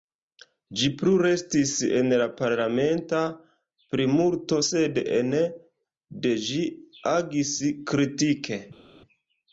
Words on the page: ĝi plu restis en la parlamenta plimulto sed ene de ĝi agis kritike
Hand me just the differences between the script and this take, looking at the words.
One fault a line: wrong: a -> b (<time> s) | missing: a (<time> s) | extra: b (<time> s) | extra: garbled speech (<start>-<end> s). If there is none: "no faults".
no faults